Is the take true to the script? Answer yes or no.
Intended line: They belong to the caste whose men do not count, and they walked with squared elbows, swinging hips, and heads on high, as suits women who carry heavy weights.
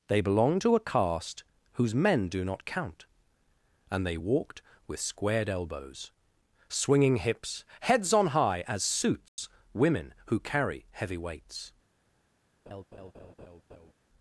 no